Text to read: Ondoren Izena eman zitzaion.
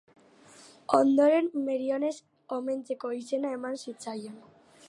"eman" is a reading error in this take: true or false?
false